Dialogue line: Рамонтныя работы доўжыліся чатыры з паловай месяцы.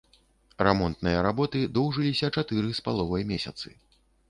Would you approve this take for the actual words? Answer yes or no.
yes